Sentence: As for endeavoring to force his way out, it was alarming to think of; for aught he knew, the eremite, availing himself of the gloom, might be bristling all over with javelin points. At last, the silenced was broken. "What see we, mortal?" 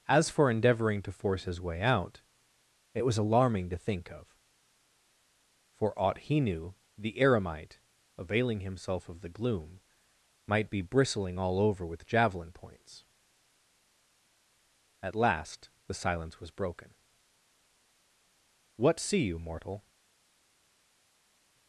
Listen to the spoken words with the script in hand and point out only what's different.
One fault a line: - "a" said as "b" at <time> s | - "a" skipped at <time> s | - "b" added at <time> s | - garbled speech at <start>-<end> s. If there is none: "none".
- "silenced" said as "silence" at 15.9 s
- "we" said as "you" at 19.2 s